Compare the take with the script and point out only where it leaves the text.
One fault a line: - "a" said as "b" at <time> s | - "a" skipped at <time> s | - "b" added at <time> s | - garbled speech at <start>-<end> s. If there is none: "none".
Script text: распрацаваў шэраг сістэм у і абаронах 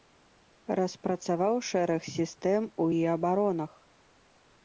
none